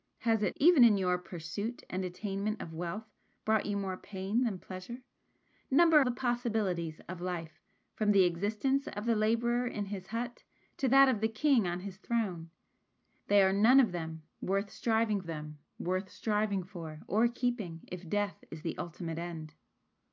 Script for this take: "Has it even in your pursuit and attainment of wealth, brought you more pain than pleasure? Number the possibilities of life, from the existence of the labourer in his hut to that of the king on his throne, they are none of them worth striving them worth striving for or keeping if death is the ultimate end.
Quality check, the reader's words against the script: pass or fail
pass